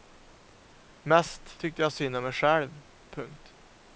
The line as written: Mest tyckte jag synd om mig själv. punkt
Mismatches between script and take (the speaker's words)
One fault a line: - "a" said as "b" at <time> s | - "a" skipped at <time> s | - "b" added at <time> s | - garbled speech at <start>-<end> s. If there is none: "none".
none